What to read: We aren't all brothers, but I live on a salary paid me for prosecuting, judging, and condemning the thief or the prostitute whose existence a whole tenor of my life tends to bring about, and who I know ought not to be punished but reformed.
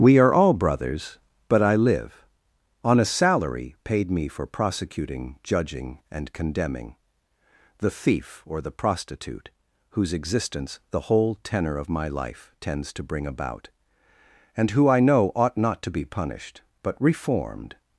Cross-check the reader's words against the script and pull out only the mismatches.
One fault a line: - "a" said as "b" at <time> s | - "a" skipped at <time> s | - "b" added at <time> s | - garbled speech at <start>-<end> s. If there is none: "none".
- "aren't" said as "are" at 0.2 s
- "a" said as "the" at 10.9 s